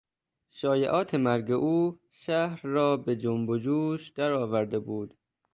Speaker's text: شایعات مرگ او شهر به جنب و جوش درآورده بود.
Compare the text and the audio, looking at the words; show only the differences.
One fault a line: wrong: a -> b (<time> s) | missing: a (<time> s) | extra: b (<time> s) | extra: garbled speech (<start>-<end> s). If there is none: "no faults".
extra: را (2.6 s)